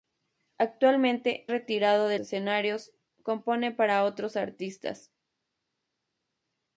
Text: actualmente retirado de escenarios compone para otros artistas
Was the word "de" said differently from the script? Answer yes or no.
no